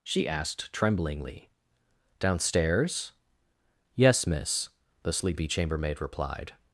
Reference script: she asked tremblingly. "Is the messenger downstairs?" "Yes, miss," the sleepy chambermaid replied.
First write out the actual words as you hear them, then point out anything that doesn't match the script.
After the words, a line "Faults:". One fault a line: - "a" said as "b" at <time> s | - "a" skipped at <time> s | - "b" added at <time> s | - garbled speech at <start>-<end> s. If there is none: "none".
she asked tremblingly. "downstairs?" "Yes, miss," the sleepy chambermaid replied.
Faults:
- "Is the messenger" skipped at 1.5 s